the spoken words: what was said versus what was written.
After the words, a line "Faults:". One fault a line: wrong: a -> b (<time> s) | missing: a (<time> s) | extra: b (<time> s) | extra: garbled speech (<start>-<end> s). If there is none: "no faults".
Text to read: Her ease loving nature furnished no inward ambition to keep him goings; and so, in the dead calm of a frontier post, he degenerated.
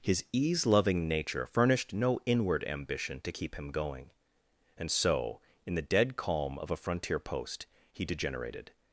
His ease loving nature furnished no inward ambition to keep him going; and so, in the dead calm of a frontier post, he degenerated.
Faults:
wrong: Her -> His (0.0 s)
wrong: goings -> going (3.7 s)